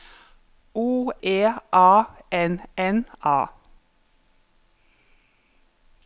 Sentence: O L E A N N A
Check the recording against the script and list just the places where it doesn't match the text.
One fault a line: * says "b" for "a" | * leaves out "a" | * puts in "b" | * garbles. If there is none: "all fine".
* leaves out "L"